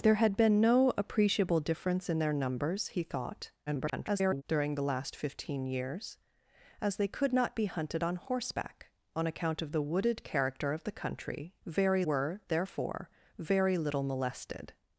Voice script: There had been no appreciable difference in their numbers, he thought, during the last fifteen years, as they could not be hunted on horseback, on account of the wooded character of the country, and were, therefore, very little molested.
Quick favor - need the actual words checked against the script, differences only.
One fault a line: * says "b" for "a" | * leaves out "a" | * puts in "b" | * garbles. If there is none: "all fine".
* garbles
* says "very" for "and"